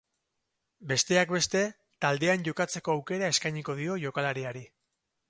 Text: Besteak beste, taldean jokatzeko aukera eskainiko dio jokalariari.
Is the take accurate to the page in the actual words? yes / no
yes